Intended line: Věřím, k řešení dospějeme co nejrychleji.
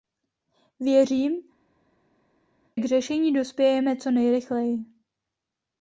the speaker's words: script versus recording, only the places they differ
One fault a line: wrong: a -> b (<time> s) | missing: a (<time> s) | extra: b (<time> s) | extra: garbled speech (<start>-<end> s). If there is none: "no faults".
no faults